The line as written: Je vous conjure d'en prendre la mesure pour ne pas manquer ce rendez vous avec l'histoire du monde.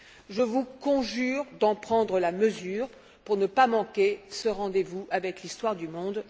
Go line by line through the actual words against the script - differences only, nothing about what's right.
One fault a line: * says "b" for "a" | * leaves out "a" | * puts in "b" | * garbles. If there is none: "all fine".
all fine